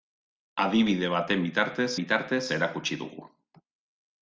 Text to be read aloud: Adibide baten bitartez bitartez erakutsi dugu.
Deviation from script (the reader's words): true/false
false